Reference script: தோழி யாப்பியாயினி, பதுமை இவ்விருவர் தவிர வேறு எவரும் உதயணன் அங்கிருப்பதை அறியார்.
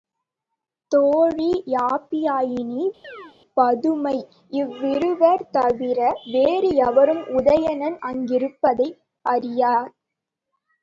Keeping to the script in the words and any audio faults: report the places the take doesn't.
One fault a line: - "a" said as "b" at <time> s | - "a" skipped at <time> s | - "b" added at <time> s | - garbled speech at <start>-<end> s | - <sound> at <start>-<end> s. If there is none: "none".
- chirp at 3.0-3.4 s